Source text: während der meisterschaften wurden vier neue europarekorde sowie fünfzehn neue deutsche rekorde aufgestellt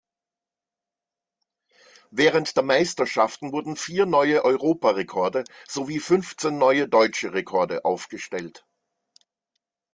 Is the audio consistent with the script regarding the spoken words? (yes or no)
yes